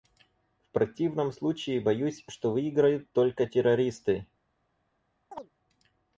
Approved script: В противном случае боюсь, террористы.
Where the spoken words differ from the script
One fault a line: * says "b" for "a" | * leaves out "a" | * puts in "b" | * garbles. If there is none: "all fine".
* puts in "что выиграют только"